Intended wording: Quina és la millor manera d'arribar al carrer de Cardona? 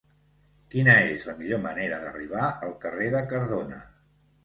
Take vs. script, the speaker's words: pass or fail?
pass